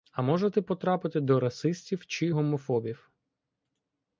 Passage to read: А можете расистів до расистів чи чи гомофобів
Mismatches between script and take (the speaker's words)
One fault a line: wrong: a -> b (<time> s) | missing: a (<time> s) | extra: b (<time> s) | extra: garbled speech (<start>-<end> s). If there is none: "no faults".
wrong: расистів -> потрапити (0.6 s)
missing: чи (2.3 s)